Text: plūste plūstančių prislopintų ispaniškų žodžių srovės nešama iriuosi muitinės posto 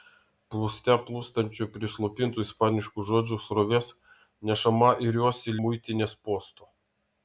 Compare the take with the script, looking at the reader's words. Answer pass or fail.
pass